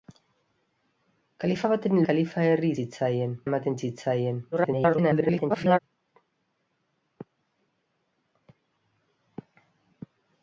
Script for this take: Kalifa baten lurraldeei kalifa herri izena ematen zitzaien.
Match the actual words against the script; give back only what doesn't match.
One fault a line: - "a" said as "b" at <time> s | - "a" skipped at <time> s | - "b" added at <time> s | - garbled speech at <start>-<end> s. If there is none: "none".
- "lurraldeei" skipped at 2.0 s
- "izena" said as "zitzaien" at 2.8 s
- garbled speech at 4.5-5.8 s